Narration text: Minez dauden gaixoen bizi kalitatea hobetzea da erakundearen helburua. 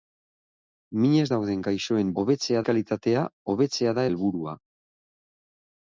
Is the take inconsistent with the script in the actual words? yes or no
yes